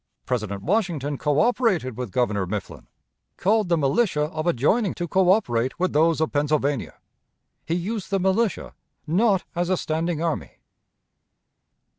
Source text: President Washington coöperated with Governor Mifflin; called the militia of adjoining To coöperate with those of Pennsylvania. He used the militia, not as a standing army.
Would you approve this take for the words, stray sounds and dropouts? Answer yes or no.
yes